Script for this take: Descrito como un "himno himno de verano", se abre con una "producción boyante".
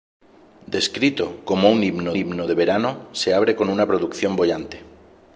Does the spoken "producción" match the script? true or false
true